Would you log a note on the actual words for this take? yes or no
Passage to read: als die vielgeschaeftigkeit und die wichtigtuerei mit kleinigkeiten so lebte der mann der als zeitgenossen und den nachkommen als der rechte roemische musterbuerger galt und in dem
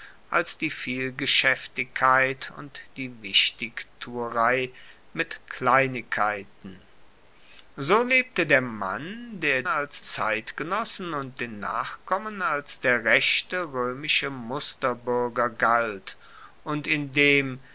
no